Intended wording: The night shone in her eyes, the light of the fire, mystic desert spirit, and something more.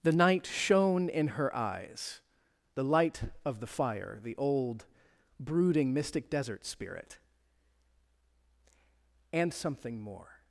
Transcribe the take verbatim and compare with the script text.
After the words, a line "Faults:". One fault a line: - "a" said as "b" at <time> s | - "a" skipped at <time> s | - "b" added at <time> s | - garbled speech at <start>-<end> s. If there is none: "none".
The night shone in her eyes, the light of the fire, the old brooding mystic desert spirit, and something more.
Faults:
- "the old brooding" added at 4.2 s